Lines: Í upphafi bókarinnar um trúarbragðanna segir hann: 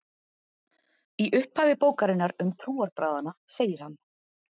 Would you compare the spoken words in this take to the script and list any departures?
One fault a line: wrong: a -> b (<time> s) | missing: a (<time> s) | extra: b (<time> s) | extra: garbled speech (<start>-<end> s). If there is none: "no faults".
no faults